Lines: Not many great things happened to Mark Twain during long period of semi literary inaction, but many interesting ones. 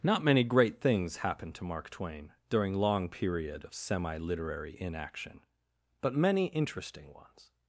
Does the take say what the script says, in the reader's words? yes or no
yes